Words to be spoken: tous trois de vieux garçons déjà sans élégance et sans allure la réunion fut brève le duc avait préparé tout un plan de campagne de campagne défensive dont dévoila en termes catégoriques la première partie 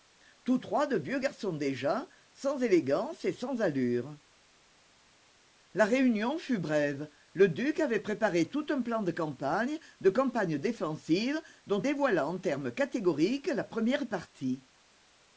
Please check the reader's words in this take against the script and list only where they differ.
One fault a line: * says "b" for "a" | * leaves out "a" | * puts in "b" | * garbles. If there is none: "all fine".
all fine